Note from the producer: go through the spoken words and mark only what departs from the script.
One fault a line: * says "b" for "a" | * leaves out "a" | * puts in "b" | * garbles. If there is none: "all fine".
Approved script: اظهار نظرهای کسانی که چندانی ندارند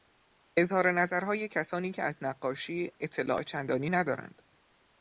* puts in "از نقاشی اطلاع"